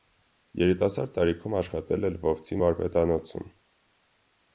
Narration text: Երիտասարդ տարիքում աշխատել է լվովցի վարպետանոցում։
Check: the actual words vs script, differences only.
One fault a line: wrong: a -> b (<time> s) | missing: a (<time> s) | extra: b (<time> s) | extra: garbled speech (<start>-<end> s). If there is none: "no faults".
no faults